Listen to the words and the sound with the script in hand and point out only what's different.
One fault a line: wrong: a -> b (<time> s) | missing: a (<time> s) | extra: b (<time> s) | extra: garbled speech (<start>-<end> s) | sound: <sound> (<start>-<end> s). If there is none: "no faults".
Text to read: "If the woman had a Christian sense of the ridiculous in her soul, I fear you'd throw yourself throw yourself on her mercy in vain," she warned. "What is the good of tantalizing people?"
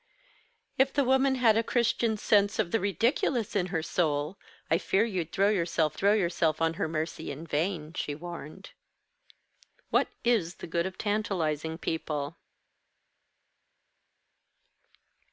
no faults